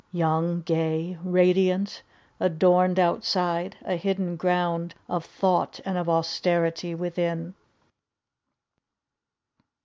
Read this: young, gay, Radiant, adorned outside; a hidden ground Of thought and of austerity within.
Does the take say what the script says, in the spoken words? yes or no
yes